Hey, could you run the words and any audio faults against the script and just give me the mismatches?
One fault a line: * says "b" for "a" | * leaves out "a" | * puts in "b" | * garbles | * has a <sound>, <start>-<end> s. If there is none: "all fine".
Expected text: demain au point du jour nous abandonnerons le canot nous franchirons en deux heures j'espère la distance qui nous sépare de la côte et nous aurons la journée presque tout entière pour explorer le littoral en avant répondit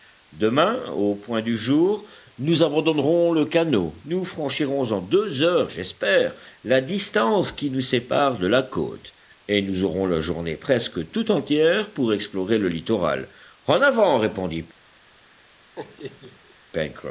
* has a laugh, 15.7-16.6 s